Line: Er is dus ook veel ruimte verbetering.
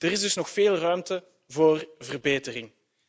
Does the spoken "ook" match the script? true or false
false